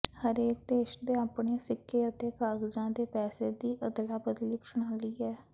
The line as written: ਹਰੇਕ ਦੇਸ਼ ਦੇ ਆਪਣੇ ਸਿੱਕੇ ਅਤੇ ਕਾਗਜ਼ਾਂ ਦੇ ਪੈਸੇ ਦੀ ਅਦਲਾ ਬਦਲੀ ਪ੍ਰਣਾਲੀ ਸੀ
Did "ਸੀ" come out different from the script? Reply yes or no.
yes